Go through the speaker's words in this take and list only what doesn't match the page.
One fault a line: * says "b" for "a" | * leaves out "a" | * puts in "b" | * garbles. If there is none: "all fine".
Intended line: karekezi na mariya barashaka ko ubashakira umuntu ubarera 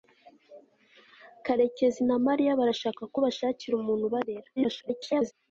* garbles